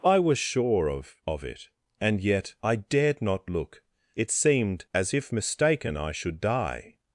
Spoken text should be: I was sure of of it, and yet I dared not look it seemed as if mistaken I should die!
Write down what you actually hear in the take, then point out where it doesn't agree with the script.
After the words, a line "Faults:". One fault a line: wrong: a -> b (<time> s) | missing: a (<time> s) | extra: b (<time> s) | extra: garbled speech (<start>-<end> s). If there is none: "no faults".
I was sure of of it, and yet I dared not look it seemed as if mistaken I should die!
Faults:
no faults